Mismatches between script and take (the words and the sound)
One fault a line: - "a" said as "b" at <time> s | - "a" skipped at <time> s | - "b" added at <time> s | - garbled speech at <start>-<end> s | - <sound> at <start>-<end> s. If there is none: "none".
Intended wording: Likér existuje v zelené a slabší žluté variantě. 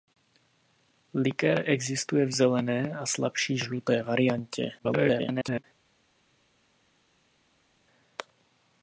- garbled speech at 4.8-5.6 s